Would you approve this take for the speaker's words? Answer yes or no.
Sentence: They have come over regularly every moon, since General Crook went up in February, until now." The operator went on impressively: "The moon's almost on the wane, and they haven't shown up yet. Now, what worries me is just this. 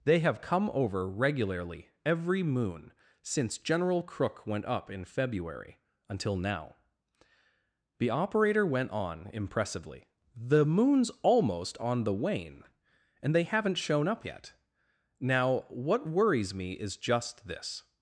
yes